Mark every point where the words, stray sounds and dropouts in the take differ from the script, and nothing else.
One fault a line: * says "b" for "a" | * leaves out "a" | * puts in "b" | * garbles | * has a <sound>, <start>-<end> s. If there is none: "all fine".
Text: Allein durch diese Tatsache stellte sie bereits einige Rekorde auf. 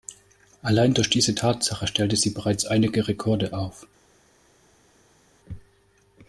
all fine